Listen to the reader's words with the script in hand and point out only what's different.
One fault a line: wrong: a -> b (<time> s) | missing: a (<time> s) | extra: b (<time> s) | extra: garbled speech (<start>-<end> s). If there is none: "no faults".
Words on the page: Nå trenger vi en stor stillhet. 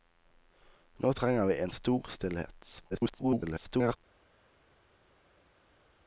extra: garbled speech (2.9-4.0 s)